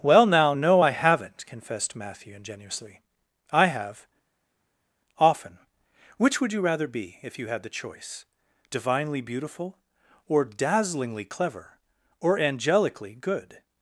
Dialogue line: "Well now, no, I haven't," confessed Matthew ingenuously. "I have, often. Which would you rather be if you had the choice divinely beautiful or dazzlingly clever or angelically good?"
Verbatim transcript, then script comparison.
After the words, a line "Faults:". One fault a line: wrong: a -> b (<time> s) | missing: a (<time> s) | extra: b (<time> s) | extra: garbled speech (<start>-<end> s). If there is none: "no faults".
"Well now, no, I haven't," confessed Matthew ingenuously. "I have, often. Which would you rather be if you had the choice divinely beautiful or dazzlingly clever or angelically good?"
Faults:
no faults